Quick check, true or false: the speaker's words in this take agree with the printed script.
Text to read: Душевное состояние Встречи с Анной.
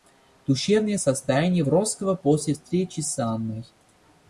false